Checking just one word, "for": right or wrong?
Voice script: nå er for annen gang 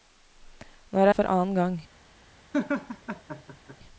right